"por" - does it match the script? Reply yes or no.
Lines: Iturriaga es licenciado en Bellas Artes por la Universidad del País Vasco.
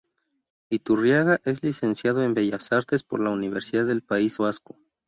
yes